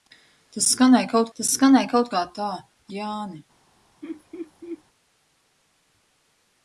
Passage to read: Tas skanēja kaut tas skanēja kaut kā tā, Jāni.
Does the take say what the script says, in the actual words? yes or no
yes